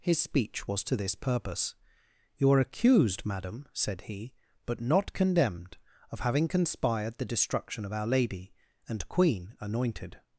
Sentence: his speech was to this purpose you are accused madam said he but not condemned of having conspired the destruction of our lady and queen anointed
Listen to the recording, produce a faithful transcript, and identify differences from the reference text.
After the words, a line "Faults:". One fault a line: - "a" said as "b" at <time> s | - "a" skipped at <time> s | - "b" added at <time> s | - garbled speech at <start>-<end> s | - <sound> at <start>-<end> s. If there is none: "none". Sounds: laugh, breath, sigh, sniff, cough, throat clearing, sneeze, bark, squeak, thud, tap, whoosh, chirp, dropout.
his speech was to this purpose you are accused madam said he but not condemned of having conspired the destruction of our lady and queen anointed
Faults:
none